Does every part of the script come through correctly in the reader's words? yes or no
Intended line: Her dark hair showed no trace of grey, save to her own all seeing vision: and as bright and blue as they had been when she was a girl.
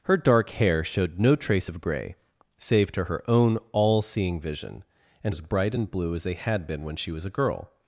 yes